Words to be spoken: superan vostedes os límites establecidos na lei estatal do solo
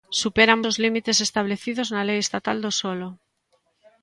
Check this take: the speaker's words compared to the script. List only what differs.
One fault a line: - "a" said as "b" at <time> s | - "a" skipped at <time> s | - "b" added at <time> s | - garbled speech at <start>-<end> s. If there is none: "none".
- "vostedes" skipped at 0.6 s